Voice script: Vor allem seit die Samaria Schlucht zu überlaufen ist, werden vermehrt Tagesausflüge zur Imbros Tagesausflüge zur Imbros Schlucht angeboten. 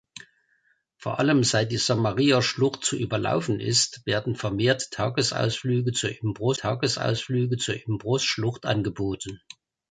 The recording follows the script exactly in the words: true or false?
true